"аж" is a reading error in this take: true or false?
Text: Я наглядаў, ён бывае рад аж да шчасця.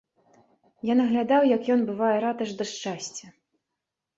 false